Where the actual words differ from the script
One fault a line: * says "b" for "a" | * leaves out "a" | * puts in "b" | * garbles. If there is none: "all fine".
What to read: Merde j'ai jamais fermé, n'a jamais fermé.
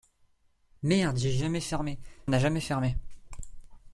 all fine